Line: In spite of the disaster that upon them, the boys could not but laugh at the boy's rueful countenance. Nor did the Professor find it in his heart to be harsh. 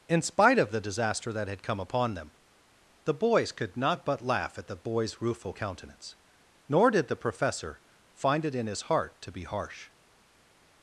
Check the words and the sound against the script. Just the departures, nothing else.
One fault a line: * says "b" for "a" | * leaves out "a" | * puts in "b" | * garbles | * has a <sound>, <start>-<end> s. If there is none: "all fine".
* puts in "had come"